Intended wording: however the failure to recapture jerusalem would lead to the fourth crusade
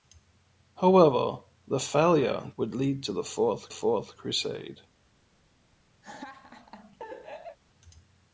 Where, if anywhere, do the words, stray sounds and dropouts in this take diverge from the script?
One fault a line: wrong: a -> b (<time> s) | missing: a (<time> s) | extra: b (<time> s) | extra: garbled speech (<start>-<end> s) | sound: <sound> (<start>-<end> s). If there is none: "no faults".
missing: to recapture jerusalem (2.5 s)
extra: fourth (3.7 s)
sound: laugh (6.0-7.6 s)